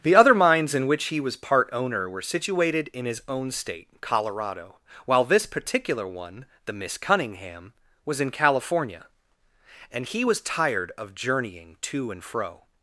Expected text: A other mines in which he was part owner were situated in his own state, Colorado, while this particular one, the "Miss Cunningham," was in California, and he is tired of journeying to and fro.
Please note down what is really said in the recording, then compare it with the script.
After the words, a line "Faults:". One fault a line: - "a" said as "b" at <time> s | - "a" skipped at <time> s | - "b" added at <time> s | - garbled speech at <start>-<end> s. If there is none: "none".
The other mines in which he was part owner were situated in his own state, Colorado, while this particular one, the "Miss Cunningham," was in California, and he was tired of journeying to and fro.
Faults:
- "A" said as "The" at 0.0 s
- "is" said as "was" at 10.2 s